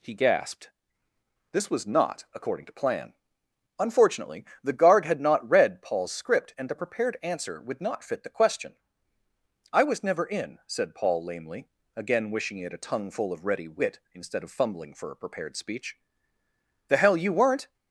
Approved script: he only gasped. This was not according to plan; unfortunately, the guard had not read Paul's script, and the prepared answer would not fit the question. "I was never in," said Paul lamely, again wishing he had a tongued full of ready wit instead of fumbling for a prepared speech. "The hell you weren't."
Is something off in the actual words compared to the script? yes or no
yes